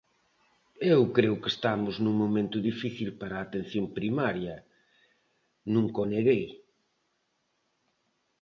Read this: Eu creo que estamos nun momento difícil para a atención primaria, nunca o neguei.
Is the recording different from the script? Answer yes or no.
no